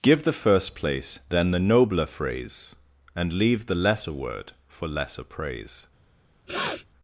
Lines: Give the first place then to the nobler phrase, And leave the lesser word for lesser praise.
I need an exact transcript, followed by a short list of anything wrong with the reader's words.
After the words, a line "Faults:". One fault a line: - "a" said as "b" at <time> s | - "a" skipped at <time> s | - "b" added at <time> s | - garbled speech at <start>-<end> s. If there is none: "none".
Give the first place then the nobler phrase, And leave the lesser word for lesser praise.
Faults:
- "to" skipped at 1.5 s